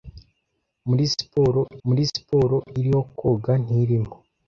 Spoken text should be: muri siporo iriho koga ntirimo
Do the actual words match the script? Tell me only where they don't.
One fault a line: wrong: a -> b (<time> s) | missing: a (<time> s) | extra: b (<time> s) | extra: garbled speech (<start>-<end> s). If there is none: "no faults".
extra: muri siporo (1.9 s)